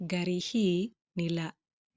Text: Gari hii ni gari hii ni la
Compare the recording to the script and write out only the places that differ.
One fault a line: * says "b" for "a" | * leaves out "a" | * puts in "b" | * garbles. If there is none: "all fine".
* leaves out "gari hii ni"